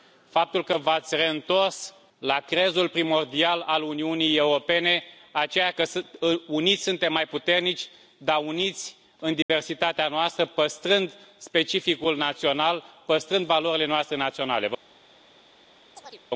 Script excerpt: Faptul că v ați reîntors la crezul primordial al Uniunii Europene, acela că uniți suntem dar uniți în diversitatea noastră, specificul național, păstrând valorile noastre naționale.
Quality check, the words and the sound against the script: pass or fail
fail